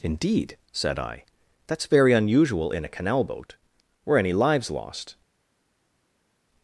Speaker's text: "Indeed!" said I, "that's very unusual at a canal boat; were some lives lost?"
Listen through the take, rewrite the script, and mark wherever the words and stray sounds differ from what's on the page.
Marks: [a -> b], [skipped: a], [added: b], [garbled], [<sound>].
"Indeed!" said I, "that's very unusual [at -> in] a canal boat; were [some -> any] lives lost?"